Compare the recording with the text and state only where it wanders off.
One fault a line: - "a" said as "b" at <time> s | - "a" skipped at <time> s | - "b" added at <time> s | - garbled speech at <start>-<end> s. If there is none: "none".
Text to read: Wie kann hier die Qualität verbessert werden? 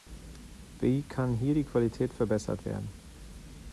none